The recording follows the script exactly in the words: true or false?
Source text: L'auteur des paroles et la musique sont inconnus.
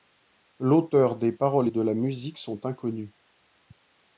false